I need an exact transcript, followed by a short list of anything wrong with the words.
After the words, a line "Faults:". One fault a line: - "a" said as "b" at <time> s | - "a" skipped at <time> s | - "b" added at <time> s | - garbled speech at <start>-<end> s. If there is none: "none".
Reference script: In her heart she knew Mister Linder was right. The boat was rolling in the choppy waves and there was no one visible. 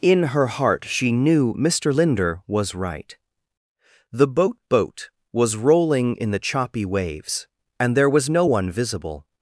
In her heart she knew Mister Linder was right. The boat boat was rolling in the choppy waves and there was no one visible.
Faults:
- "boat" added at 4.7 s